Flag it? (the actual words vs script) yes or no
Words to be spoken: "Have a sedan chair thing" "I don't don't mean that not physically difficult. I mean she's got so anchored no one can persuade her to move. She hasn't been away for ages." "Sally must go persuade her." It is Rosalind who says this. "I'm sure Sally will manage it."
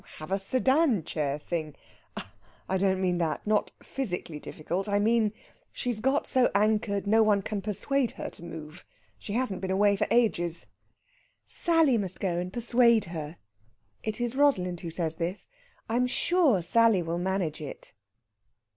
yes